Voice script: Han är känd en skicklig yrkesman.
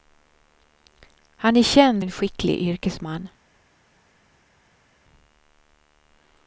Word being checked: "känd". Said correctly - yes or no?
yes